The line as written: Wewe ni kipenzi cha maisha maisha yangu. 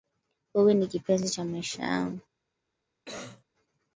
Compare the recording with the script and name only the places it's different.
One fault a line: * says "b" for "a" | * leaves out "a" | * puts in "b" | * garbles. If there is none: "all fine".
* leaves out "maisha"